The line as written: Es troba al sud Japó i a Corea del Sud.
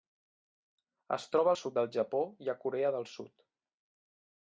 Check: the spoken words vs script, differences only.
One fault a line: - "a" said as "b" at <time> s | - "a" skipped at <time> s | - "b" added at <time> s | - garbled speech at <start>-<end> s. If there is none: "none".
- "del" added at 1.8 s